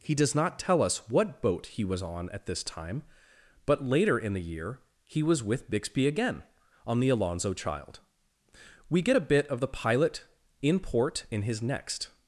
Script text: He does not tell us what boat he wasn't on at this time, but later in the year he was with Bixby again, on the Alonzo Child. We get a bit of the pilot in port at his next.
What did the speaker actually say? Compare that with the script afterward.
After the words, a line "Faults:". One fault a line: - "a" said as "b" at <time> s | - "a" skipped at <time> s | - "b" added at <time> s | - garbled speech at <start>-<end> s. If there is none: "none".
He does not tell us what boat he was on at this time, but later in the year he was with Bixby again, on the Alonzo Child. We get a bit of the pilot in port in his next.
Faults:
- "wasn't" said as "was" at 1.8 s
- "at" said as "in" at 11.3 s